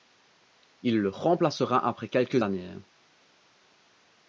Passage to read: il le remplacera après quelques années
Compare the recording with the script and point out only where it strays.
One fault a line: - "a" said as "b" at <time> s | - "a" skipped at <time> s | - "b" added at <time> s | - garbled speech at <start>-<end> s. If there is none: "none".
none